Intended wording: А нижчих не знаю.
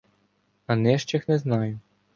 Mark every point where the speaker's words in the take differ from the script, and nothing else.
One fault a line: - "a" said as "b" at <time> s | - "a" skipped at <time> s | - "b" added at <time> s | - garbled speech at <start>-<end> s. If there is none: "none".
none